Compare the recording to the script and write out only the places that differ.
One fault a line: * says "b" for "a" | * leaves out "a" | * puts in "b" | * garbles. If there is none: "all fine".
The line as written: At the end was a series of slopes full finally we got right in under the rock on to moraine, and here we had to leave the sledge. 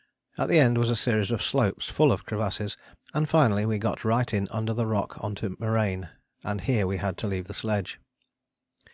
* puts in "of crevasses and"